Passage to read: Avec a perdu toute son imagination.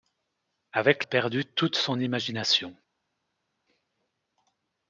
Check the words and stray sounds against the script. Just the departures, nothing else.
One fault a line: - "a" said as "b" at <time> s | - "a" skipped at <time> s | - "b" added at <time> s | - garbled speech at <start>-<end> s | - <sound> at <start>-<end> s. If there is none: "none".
none